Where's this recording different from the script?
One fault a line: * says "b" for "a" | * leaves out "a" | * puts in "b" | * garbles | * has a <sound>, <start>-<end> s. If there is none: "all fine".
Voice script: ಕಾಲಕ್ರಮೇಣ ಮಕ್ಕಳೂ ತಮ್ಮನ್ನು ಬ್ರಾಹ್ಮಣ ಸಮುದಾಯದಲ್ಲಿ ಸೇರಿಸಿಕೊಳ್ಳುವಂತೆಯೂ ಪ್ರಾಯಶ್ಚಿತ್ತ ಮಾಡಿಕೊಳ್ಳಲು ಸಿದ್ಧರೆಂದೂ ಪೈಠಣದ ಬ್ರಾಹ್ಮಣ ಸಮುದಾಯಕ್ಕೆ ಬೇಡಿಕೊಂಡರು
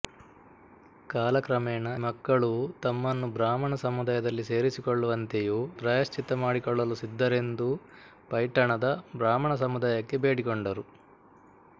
all fine